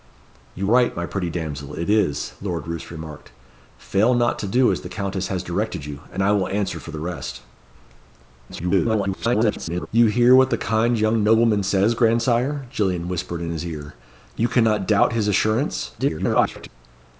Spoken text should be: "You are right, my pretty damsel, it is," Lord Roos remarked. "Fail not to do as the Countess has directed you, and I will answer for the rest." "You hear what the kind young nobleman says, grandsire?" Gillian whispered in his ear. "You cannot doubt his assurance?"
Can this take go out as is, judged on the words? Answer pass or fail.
fail